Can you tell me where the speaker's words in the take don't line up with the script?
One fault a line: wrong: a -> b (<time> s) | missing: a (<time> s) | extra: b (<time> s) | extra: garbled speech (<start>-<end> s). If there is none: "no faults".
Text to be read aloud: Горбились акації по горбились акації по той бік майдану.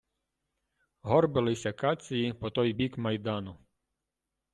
missing: горбились акації по (2.5 s)